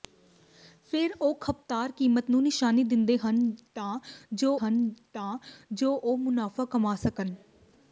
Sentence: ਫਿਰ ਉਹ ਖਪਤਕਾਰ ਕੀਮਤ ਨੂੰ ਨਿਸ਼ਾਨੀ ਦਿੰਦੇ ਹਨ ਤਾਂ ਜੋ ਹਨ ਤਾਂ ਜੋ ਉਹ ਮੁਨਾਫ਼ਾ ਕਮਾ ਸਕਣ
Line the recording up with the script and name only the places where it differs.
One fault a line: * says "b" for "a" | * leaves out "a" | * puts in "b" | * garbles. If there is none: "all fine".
all fine